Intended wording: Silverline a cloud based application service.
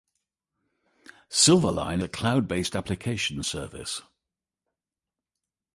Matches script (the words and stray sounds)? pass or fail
pass